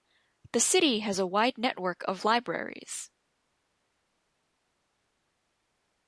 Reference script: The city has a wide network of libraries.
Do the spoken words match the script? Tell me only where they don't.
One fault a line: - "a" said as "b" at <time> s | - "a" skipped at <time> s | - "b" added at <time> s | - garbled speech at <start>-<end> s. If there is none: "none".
none